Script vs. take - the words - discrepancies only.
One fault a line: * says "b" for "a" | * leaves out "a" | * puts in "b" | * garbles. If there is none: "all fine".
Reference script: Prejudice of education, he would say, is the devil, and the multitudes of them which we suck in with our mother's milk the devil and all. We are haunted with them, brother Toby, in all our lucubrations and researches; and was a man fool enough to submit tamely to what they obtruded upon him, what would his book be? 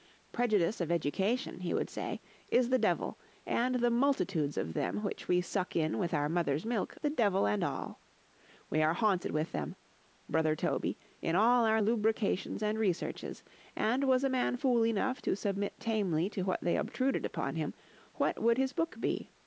all fine